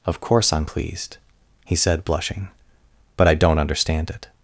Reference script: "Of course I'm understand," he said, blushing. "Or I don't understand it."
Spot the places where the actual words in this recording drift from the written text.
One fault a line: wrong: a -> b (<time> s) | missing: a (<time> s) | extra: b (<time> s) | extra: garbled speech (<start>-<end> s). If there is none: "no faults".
wrong: understand -> pleased (0.6 s)
wrong: Or -> But (3.2 s)